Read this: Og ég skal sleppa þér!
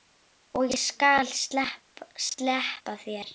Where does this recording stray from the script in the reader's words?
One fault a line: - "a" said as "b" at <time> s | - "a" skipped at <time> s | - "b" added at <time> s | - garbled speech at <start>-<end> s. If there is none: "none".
none